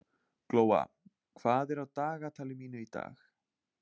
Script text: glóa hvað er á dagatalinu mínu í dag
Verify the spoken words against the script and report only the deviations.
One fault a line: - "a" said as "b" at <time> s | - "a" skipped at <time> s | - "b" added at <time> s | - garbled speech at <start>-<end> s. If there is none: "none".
none